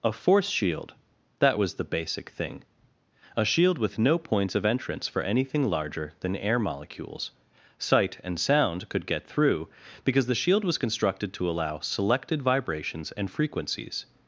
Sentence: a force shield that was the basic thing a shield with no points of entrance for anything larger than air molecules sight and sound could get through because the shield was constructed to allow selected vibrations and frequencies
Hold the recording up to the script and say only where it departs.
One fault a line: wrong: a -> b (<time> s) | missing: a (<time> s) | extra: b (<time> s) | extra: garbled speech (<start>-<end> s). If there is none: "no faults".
no faults